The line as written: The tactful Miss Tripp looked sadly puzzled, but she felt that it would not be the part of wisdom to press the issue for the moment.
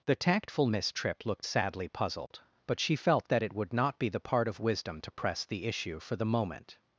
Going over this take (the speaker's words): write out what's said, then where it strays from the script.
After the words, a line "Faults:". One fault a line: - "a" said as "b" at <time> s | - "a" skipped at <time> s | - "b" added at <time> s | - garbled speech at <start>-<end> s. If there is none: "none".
The tactful Miss Tripp looked sadly puzzled, but she felt that it would not be the part of wisdom to press the issue for the moment.
Faults:
none